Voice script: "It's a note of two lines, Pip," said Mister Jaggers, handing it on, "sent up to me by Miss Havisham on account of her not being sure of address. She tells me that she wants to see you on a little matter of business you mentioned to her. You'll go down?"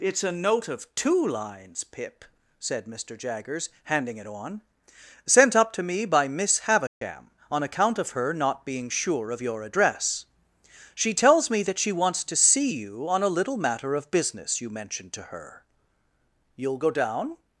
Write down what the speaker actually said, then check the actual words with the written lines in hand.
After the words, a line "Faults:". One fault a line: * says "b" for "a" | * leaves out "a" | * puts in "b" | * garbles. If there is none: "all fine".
"It's a note of two lines, Pip," said Mister Jaggers, handing it on, "sent up to me by Miss Havisham on account of her not being sure of your address. She tells me that she wants to see you on a little matter of business you mentioned to her. You'll go down?"
Faults:
* puts in "your"